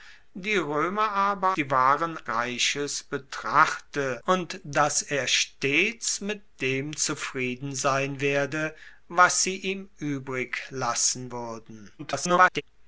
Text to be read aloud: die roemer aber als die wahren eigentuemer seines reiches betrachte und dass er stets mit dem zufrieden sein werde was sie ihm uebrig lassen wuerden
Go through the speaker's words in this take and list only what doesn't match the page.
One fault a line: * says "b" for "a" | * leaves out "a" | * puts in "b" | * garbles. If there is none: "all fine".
* leaves out "als"
* leaves out "eigentuemer seines"
* garbles